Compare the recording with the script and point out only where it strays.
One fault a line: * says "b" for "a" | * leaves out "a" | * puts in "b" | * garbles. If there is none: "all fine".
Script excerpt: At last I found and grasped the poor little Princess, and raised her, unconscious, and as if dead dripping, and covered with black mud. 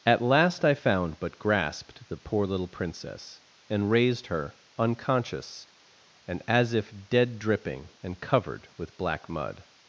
* says "but" for "and"